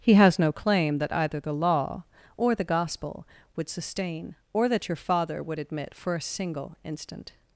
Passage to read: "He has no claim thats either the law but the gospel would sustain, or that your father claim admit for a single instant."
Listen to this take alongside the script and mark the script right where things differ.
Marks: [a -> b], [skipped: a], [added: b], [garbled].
"He has no claim [thats -> that] either the law [but -> or] the gospel would sustain, or that your father [claim -> would] admit for a single instant."